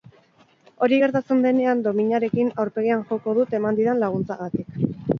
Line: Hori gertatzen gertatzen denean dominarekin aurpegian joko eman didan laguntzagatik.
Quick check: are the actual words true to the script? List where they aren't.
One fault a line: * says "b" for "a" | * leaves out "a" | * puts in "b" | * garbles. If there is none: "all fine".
* leaves out "gertatzen"
* puts in "dut"